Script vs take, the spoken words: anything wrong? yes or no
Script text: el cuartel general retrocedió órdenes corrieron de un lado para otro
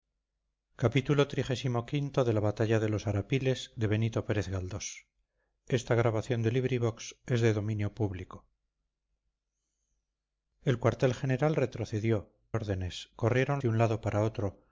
no